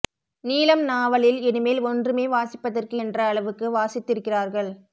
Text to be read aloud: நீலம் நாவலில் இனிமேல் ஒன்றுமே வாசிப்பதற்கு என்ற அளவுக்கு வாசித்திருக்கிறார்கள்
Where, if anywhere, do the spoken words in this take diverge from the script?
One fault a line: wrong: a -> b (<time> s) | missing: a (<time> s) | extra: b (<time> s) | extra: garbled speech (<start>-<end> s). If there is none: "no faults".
no faults